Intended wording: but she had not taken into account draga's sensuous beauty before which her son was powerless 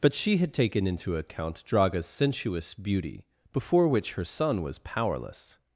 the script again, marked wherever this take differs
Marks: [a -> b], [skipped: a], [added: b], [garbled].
but she had [skipped: not] taken into account draga's sensuous beauty before which her son was powerless